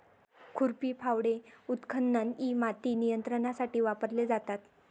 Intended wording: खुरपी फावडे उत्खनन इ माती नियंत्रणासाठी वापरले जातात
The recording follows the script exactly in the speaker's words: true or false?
true